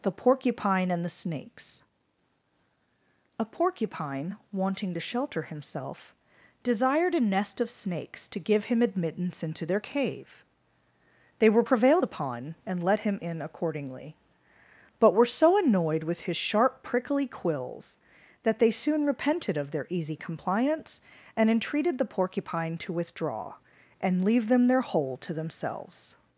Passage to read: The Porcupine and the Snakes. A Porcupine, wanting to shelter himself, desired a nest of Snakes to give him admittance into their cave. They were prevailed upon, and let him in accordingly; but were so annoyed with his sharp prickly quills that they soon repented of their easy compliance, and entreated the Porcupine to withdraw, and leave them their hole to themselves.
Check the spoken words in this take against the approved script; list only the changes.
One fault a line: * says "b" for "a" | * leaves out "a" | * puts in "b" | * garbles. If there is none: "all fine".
all fine